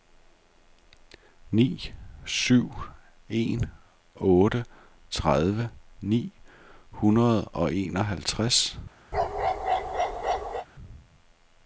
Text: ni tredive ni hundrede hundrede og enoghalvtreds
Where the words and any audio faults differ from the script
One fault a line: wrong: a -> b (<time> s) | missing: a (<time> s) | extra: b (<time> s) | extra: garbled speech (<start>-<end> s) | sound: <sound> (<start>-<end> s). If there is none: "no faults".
extra: syv en otte (2.2 s)
missing: hundrede (7.4 s)
sound: bark (9.1-10.7 s)